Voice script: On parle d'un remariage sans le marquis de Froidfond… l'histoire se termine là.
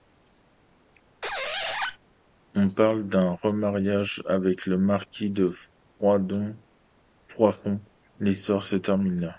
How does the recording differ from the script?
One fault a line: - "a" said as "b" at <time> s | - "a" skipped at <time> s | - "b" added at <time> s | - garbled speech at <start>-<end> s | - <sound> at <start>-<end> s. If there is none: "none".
- squeak at 1.2-2.0 s
- "sans" said as "avec" at 4.3 s